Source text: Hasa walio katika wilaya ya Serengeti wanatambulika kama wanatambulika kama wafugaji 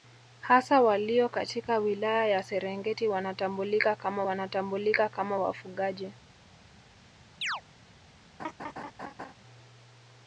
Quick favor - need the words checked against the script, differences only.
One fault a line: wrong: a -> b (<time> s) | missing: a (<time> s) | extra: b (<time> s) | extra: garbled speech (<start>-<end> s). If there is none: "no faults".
no faults